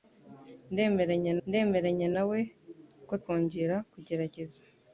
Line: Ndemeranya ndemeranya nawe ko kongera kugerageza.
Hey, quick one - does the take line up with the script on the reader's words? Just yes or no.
yes